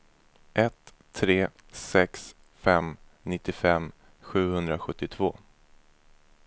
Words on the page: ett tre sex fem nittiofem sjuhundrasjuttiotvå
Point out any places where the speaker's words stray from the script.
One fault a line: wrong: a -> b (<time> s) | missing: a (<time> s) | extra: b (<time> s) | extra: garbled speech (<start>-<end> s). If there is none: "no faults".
no faults